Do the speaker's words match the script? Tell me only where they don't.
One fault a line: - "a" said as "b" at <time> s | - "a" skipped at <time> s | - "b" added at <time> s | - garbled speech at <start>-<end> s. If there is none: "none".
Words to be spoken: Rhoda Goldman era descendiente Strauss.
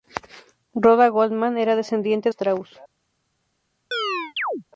none